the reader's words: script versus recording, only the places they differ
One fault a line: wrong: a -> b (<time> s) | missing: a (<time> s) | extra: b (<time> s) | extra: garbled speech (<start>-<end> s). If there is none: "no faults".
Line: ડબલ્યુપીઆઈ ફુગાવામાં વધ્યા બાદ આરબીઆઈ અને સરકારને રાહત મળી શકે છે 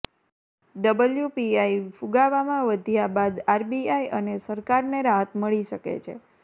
no faults